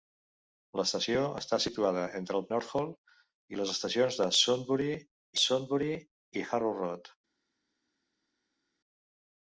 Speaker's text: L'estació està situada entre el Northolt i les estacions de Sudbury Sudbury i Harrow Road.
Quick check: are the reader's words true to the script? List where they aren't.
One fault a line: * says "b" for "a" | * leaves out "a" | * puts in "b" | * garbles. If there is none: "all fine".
all fine